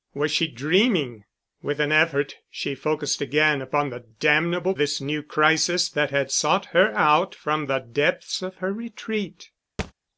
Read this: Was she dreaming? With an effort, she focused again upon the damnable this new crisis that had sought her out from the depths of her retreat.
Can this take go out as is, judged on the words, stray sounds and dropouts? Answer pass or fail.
fail